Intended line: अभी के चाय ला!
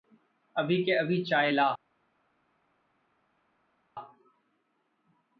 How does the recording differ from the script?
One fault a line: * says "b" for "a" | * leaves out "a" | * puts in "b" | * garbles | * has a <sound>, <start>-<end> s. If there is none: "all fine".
* puts in "अभी"